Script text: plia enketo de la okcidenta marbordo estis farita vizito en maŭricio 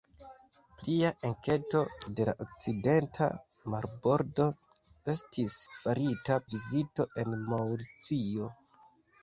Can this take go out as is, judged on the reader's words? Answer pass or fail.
pass